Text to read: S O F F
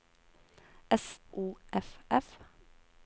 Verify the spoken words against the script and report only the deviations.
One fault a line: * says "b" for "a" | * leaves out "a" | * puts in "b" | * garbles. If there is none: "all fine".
all fine